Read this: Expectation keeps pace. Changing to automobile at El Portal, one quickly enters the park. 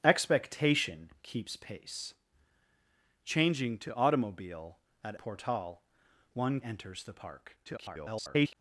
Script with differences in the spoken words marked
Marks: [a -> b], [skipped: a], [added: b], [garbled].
Expectation keeps pace. Changing to automobile at [skipped: El] Portal, one [skipped: quickly] enters the park. [garbled]